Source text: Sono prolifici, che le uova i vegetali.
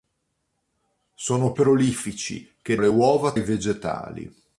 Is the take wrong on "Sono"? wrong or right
right